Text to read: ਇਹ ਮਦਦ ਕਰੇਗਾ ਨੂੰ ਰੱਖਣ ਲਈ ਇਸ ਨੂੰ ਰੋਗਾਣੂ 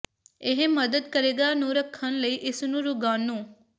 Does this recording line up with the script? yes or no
yes